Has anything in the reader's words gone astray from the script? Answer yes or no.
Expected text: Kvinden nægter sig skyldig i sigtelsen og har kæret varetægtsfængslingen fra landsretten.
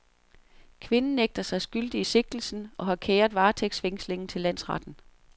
yes